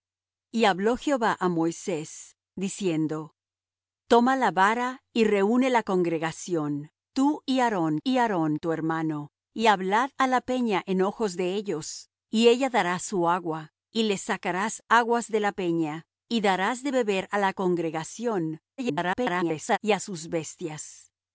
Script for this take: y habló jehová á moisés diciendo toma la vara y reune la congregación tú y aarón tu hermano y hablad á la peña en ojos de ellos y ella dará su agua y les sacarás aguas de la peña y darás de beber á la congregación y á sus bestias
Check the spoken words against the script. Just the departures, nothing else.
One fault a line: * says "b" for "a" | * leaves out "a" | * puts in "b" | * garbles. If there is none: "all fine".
* puts in "y aarón"
* garbles